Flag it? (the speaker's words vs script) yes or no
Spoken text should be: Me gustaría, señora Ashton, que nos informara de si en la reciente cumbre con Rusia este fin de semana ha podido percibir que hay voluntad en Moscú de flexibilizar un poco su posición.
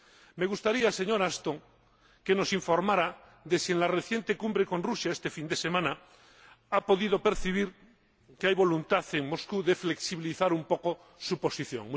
no